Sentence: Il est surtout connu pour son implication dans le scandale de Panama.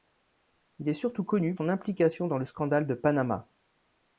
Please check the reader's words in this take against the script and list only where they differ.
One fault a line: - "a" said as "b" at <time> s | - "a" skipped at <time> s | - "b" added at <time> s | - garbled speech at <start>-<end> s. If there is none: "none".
- "pour" skipped at 1.6 s